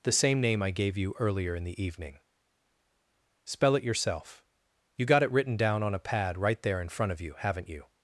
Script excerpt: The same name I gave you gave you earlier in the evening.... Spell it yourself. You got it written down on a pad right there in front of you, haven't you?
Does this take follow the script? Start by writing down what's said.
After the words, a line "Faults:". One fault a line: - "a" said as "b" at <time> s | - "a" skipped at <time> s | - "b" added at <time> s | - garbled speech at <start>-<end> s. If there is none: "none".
The same name I gave you earlier in the evening.... Spell it yourself. You got it written down on a pad right there in front of you, haven't you?
Faults:
- "gave you" skipped at 1.1 s